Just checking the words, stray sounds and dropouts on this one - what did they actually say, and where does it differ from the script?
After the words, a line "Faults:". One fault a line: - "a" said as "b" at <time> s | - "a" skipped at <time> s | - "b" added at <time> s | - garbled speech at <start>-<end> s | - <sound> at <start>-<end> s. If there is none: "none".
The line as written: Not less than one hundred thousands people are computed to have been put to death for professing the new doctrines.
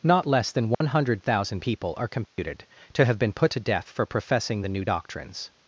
Not less than one hundred thousand people are computed to have been put to death for professing the new doctrines.
Faults:
- dropout at 0.7-0.8 s
- "thousands" said as "thousand" at 1.2 s
- dropout at 2.3-2.4 s